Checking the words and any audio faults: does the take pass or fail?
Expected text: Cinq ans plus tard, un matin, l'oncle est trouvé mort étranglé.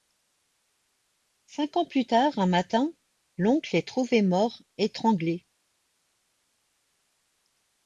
pass